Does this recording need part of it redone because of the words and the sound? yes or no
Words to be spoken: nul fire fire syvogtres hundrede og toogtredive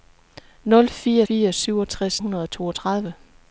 no